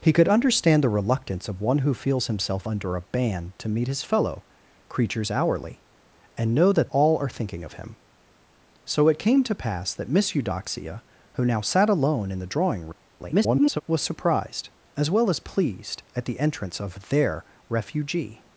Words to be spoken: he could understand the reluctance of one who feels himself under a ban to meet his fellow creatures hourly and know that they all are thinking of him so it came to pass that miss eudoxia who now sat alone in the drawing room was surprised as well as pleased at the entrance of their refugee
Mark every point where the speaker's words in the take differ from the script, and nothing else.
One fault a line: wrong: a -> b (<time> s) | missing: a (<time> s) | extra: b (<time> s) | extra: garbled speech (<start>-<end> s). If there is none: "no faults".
missing: they (6.9 s)
extra: garbled speech (13.2-13.8 s)